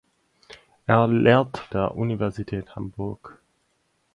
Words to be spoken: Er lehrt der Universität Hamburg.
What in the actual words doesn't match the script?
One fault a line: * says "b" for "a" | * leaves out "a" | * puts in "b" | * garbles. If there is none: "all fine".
all fine